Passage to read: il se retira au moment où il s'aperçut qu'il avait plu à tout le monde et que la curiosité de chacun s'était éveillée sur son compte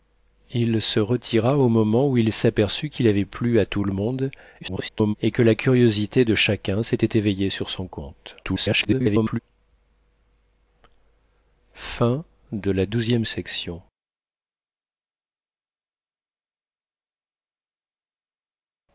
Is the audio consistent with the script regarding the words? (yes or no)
no